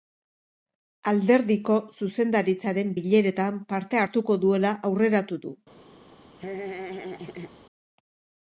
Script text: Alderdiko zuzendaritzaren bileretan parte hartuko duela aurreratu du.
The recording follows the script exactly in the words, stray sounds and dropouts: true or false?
false